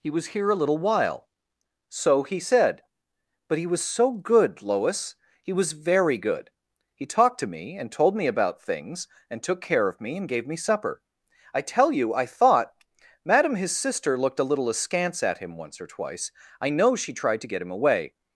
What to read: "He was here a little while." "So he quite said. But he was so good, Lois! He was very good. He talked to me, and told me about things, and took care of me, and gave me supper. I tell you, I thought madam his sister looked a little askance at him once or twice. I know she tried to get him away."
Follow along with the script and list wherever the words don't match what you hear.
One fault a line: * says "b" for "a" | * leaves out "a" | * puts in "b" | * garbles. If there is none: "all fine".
* leaves out "quite"